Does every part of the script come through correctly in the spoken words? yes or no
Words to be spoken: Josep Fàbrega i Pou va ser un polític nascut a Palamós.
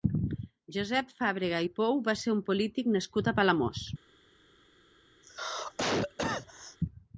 yes